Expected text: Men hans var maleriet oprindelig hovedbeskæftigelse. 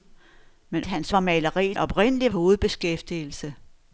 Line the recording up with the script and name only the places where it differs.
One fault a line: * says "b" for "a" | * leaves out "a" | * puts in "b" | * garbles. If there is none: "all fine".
all fine